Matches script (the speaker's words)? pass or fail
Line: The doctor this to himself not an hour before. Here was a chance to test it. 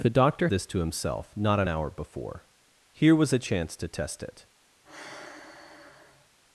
pass